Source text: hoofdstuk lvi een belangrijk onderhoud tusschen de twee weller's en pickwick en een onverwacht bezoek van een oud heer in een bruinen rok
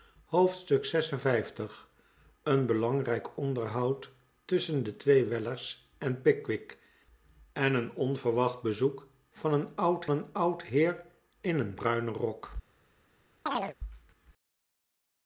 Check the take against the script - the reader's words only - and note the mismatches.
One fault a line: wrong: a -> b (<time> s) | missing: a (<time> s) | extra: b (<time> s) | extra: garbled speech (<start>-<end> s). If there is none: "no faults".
extra: een oud (10.1 s)